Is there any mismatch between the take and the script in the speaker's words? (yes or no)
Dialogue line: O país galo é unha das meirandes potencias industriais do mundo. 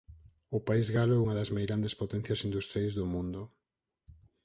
no